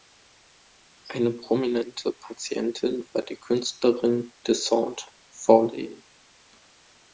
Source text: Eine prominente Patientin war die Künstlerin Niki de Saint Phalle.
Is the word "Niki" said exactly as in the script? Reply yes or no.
no